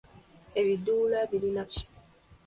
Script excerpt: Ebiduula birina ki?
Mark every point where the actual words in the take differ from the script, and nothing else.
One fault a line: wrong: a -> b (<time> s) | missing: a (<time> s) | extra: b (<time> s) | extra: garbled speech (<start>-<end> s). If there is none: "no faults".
no faults